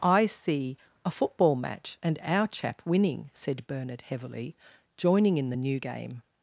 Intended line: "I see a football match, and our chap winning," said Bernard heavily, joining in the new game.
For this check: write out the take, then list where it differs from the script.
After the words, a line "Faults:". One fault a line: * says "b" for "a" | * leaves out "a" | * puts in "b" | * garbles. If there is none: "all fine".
"I see a football match, and our chap winning," said Bernard heavily, joining in the new game.
Faults:
all fine